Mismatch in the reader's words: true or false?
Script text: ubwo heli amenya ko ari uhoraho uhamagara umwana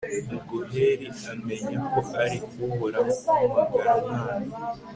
false